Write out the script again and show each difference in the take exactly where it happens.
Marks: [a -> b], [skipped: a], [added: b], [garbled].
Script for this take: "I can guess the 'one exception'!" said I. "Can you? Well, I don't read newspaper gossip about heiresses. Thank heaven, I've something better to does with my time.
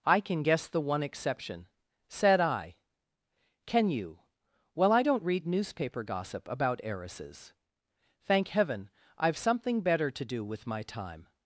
"I can guess the 'one exception'!" said I. "Can you? Well, I don't read newspaper gossip about heiresses. Thank heaven, I've something better to [does -> do] with my time.